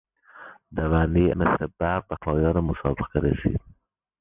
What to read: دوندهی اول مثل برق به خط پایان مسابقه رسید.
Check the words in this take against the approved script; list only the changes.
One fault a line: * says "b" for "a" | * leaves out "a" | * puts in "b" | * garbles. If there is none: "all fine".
* leaves out "اول"
* leaves out "خط"